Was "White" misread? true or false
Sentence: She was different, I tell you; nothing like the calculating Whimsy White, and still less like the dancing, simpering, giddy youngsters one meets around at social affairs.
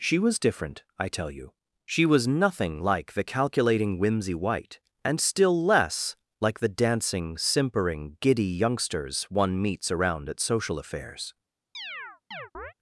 false